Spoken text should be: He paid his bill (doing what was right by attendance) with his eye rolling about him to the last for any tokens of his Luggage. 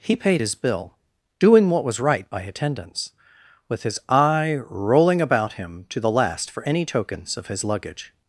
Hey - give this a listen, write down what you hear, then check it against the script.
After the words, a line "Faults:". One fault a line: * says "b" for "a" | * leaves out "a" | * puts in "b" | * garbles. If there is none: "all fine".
He paid his bill (doing what was right by attendance) with his eye rolling about him to the last for any tokens of his Luggage.
Faults:
all fine